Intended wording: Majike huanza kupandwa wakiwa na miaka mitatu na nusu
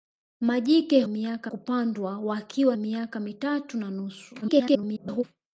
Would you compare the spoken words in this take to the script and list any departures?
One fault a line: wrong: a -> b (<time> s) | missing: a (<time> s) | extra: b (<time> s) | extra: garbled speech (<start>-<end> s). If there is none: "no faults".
wrong: huanza -> miaka (1.1 s)
missing: na (2.8 s)
extra: garbled speech (4.4-5.2 s)